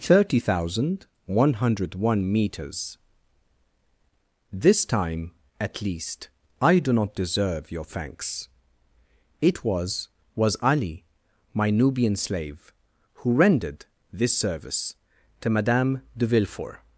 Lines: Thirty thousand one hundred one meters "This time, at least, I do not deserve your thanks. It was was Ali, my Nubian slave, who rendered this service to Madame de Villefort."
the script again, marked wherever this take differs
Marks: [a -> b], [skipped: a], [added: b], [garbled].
Thirty thousand one hundred one meters "This time, at least, I do not deserve your thanks. It was was Ali, my Nubian slave, who rendered this service to Madame de Villefort."